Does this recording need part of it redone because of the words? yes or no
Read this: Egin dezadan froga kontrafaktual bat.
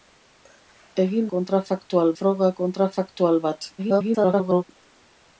yes